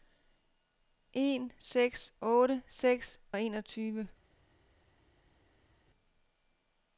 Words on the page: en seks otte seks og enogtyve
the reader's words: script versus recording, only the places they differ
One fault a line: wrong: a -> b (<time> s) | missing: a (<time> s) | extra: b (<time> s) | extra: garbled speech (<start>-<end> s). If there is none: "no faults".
no faults